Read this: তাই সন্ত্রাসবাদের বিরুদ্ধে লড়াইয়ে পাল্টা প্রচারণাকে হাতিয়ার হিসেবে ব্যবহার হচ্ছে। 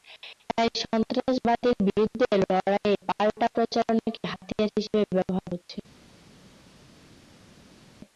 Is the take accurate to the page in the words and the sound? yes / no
yes